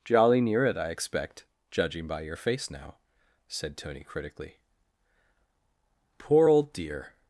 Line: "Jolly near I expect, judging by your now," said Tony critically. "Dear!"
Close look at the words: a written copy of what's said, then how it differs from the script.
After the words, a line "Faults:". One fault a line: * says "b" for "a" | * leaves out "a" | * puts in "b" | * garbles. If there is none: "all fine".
"Jolly near it, I expect, judging by your face now," said Tony critically. "Poor old dear!"
Faults:
* puts in "it"
* puts in "face"
* puts in "Poor old"